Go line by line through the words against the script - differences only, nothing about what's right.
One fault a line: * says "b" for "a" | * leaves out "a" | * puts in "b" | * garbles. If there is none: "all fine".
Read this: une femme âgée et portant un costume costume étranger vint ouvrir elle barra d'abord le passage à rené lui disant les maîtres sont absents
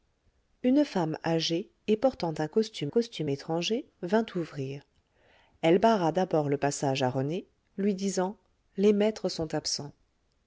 all fine